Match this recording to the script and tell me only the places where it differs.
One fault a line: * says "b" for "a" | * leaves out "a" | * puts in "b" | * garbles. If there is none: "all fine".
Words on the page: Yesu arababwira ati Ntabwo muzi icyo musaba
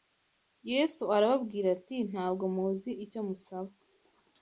all fine